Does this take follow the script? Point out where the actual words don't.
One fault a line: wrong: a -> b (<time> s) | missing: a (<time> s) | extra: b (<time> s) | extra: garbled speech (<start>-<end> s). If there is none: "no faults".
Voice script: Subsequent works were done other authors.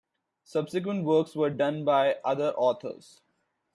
extra: by (1.8 s)